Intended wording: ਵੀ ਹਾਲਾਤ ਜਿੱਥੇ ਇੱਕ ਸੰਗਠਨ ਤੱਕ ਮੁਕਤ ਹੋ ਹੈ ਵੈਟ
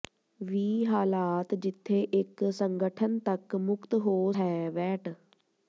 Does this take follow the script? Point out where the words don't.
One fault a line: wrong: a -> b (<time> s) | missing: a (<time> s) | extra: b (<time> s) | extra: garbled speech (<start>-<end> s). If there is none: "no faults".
no faults